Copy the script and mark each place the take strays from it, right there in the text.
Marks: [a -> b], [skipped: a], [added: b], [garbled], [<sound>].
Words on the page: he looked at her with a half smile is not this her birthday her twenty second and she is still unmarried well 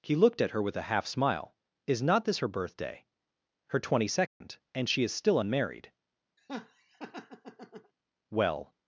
he looked at her with a half smile is not this her birthday her twenty second [dropout] and she is still unmarried [laugh] well